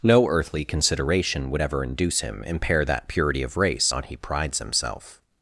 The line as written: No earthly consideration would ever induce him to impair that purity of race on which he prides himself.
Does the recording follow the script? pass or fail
fail